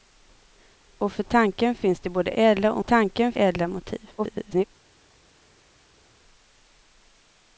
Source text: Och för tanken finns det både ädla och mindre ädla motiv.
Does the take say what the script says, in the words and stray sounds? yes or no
no